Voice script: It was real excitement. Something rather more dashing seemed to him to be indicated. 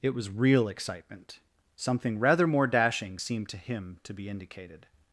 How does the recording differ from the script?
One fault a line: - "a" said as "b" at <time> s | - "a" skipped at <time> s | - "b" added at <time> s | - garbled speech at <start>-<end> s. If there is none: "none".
none